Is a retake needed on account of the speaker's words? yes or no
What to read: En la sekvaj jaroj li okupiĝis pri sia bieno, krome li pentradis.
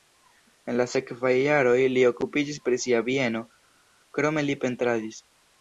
no